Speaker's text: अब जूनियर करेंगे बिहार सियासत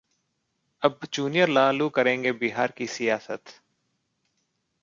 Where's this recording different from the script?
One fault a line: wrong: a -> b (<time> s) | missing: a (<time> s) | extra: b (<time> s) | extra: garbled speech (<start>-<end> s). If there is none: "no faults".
extra: लालू (1.5 s)
extra: की (2.8 s)